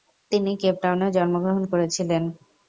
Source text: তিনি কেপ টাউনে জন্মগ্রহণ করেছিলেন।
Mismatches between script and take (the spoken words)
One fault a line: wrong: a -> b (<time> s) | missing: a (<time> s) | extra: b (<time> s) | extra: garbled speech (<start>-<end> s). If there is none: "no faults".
no faults